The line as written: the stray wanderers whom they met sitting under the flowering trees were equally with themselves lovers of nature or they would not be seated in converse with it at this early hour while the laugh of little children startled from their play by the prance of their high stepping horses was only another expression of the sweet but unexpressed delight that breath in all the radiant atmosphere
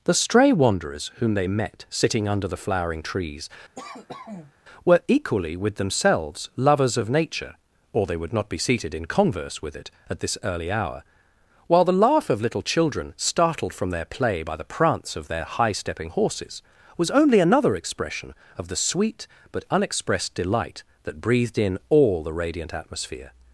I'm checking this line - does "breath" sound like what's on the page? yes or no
no